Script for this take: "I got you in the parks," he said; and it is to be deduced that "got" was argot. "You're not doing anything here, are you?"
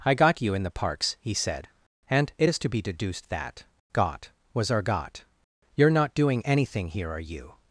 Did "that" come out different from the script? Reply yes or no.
no